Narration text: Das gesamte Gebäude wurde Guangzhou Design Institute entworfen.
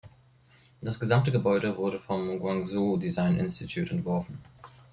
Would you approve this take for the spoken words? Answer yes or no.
no